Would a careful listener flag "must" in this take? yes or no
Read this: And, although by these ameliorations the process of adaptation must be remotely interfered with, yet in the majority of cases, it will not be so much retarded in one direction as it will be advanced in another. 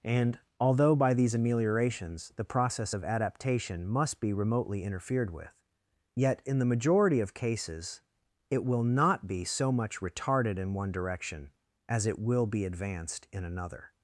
no